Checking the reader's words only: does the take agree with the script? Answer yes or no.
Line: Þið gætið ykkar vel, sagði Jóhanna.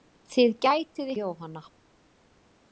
no